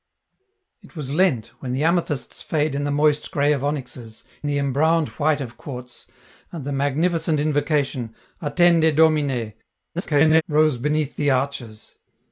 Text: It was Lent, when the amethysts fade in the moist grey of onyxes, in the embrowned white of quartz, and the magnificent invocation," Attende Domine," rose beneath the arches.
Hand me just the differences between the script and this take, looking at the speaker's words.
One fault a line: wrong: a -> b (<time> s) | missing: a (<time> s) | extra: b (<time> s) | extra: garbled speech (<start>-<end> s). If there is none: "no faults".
missing: in (4.2 s)
extra: garbled speech (10.0-10.4 s)